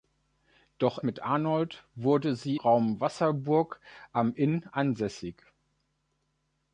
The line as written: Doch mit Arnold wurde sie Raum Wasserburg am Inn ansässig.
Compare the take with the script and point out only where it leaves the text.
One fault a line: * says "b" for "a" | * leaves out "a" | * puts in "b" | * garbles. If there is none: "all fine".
all fine